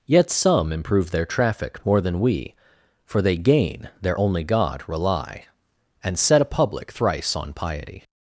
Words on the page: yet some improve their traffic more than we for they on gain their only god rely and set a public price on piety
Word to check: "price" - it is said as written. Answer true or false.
false